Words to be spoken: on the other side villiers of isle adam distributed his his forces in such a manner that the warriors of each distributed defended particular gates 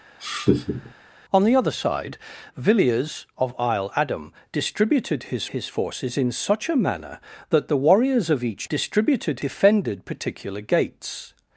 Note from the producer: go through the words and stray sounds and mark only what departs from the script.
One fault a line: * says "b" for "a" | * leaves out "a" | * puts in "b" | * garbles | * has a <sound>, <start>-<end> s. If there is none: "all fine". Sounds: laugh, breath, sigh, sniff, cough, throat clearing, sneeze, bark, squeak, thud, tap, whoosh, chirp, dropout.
* has a laugh, 0.2-0.9 s